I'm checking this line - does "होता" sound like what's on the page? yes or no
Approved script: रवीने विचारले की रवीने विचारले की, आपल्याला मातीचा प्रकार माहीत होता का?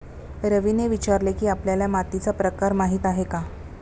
no